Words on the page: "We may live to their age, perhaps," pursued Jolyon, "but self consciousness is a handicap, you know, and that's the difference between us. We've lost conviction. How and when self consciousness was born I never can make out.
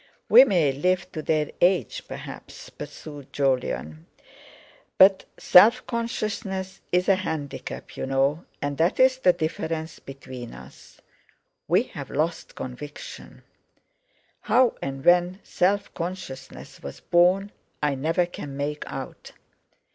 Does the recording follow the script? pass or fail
pass